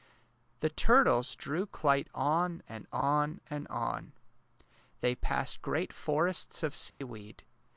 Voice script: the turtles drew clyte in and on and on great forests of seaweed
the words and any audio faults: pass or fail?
fail